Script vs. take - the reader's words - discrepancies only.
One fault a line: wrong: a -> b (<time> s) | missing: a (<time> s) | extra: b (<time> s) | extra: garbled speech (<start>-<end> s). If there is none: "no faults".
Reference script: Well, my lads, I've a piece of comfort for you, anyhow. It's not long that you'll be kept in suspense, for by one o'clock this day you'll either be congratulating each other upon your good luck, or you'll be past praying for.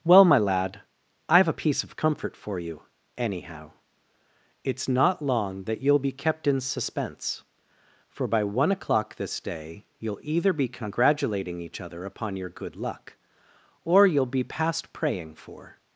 wrong: lads -> lad (0.4 s)